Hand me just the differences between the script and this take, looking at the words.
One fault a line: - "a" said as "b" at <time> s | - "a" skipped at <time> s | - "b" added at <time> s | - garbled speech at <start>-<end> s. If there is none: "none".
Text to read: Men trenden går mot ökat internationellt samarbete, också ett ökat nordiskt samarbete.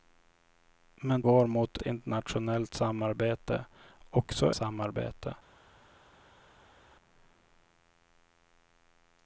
- "trenden" skipped at 1.2 s
- "ökat" skipped at 1.8 s
- "ett ökat nordiskt" skipped at 4.6 s